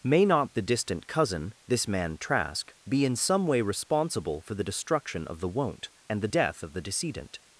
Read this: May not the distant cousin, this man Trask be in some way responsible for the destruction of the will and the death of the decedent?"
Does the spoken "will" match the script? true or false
false